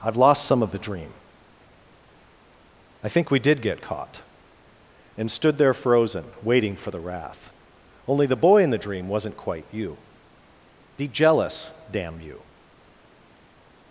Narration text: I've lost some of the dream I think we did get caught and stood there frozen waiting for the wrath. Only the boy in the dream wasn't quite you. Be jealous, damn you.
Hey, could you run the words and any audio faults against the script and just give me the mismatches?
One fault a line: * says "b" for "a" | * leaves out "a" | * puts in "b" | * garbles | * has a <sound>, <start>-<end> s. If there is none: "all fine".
all fine